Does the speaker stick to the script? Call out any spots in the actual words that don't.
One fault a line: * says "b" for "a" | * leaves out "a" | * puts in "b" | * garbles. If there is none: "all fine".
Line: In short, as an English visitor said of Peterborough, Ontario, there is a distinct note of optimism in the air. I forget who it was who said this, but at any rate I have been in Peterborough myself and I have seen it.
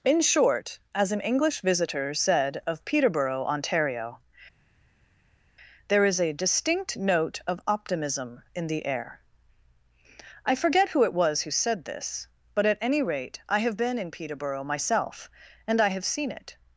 all fine